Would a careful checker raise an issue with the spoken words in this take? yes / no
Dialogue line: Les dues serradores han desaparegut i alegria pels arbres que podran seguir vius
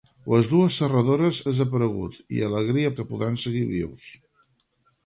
yes